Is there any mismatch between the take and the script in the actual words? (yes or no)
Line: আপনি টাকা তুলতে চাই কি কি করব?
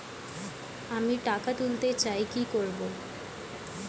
yes